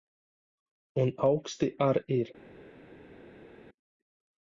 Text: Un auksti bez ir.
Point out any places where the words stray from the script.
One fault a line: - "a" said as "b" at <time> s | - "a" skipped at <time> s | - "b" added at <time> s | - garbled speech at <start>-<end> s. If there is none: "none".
- "bez" said as "ar" at 1.9 s